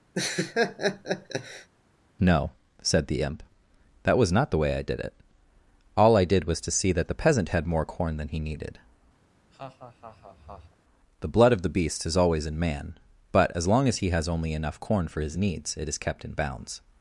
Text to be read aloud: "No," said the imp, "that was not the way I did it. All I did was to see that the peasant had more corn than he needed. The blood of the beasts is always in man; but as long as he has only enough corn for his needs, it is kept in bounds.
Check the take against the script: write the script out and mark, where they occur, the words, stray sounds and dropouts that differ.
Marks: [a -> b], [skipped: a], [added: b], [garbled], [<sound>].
[laugh] "No," said the imp, "that was not the way I did it. All I did was to see that the peasant had more corn than he needed. [laugh] The blood of the [beasts -> beast] is always in man; but as long as he has only enough corn for his needs, it is kept in bounds.